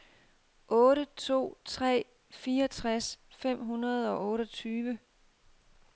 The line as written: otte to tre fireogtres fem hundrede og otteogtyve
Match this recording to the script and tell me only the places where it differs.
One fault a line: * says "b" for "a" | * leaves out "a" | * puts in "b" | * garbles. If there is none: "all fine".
all fine